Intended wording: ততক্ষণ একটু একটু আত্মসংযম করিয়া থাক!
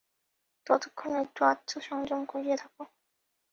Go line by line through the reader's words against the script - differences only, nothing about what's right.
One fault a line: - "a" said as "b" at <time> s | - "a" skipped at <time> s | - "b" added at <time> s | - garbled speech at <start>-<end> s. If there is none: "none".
- "একটু" skipped at 1.4 s